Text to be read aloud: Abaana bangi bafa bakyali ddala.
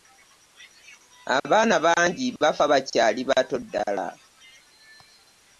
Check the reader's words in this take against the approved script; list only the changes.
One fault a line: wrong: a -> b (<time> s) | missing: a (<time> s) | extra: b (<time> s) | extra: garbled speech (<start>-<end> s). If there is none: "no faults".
extra: bato (3.3 s)